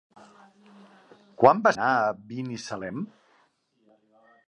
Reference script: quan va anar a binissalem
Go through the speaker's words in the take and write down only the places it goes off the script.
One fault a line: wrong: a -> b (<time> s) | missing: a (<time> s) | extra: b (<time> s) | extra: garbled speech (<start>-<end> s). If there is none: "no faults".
no faults